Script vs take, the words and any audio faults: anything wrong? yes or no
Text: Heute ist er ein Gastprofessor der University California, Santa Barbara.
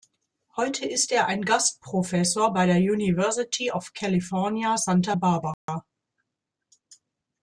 yes